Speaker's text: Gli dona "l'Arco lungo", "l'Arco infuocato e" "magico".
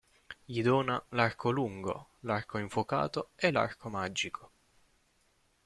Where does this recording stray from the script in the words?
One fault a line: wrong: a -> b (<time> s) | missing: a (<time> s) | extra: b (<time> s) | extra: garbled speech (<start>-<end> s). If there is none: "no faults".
extra: l'Arco (3.5 s)